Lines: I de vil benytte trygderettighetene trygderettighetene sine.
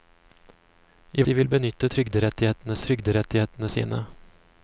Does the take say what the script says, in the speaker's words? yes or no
yes